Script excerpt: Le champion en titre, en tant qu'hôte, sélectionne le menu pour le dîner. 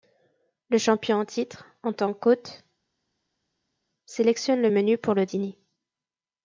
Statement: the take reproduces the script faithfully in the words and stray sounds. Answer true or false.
true